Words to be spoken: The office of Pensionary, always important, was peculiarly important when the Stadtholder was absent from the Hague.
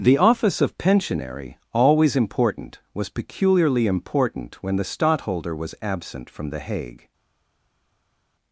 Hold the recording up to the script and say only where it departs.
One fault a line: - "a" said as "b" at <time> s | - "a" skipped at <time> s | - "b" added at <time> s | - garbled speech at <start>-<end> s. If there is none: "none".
none